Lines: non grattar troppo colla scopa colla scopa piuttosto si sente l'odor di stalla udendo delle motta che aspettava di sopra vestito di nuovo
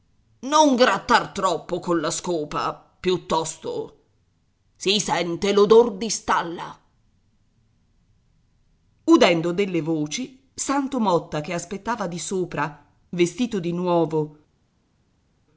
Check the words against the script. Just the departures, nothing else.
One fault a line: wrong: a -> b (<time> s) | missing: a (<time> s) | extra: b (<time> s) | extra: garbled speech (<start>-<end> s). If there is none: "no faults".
missing: colla scopa (2.7 s)
extra: voci santo (9.8 s)